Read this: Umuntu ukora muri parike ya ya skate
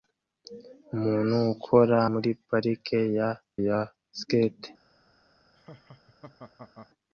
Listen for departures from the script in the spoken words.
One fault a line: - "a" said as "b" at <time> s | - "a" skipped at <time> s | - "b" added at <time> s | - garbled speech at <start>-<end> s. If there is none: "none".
none